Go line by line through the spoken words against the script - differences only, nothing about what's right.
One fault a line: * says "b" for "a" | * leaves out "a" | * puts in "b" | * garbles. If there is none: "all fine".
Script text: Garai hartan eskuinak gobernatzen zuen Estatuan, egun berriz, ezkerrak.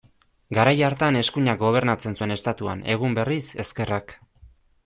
all fine